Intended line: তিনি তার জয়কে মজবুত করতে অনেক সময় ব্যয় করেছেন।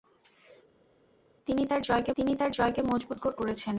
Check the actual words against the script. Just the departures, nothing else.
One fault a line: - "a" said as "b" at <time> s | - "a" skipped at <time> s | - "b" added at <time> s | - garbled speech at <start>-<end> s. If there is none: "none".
- "মজবুত করতে অনেক সময় ব্যয়" said as "তিনি তার জয়কে মজবুত করতে" at 2.2 s